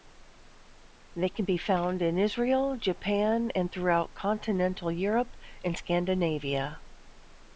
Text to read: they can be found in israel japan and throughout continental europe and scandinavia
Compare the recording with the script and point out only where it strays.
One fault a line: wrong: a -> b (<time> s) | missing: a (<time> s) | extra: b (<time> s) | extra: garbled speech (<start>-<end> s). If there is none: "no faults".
no faults